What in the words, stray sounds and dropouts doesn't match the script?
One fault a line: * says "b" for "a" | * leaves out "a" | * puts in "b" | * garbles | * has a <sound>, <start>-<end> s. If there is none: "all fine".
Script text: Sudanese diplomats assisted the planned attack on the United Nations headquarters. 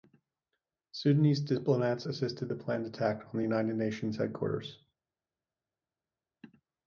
all fine